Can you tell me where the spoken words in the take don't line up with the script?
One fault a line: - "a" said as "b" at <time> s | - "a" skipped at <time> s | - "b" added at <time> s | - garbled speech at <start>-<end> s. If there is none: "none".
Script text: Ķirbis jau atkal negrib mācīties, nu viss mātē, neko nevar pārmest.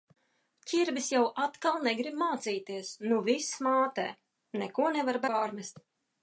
none